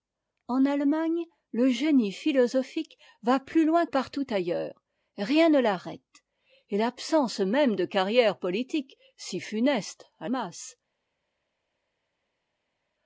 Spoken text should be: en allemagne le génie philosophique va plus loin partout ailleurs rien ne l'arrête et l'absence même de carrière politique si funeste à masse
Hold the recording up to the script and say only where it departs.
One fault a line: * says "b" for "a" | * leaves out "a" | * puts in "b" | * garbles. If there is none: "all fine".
all fine